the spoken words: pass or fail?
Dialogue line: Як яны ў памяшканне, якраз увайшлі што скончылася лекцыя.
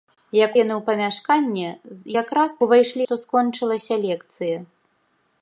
pass